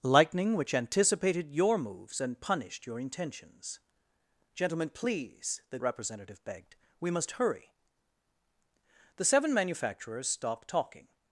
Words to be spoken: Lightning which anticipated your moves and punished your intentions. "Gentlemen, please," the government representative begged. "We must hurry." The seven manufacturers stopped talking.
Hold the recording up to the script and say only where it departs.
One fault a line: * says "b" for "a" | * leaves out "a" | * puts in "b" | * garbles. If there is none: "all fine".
* leaves out "government"